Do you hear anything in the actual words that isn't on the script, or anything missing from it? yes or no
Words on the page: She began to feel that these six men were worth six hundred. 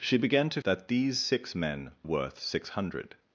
yes